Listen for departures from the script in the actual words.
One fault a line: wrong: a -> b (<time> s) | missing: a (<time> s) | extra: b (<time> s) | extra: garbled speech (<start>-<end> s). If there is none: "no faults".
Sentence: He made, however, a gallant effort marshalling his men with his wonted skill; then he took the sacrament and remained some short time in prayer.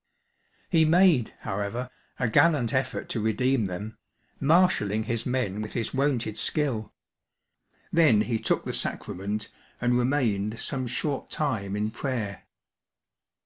extra: to redeem them (3.1 s)